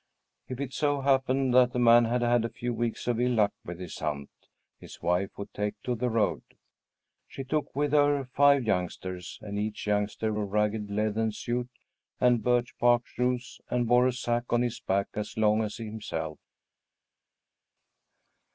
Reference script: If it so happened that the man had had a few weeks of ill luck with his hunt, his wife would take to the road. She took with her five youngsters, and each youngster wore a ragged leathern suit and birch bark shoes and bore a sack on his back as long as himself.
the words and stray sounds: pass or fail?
fail